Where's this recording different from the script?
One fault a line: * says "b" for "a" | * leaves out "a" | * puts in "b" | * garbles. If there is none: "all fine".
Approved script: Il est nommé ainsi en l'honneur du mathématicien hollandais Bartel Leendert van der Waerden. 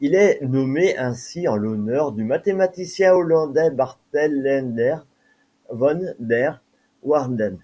all fine